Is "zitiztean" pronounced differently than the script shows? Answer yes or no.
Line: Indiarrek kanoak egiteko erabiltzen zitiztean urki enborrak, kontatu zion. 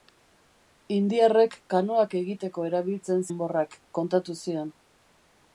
yes